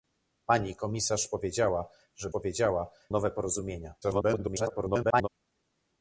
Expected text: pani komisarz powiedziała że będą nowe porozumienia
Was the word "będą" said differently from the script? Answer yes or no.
yes